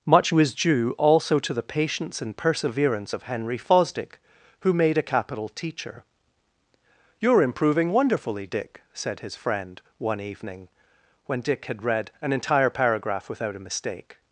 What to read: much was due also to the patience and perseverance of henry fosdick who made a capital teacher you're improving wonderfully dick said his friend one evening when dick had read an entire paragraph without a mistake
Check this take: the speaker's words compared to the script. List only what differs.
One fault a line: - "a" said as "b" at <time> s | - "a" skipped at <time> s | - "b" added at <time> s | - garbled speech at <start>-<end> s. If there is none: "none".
none